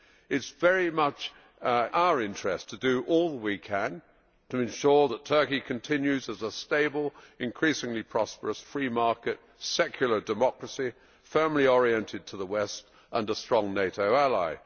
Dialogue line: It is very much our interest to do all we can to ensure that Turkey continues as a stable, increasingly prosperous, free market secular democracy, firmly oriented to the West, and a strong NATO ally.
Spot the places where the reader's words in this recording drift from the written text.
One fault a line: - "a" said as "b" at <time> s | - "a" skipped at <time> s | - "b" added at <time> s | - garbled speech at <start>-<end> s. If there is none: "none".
none